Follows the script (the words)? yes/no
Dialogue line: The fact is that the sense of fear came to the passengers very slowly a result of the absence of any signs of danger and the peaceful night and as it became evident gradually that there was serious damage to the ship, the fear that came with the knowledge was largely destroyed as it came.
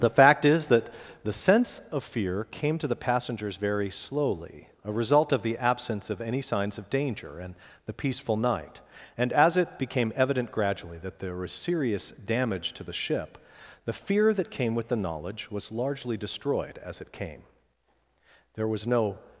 no